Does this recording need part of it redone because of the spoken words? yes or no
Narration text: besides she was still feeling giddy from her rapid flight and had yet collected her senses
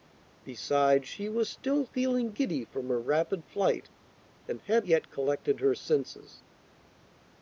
no